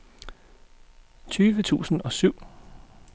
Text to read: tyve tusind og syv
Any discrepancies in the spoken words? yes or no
no